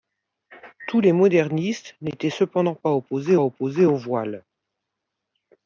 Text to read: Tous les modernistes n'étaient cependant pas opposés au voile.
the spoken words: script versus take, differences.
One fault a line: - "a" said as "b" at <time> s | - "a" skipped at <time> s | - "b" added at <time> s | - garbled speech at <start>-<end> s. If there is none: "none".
- "opposés" added at 3.4 s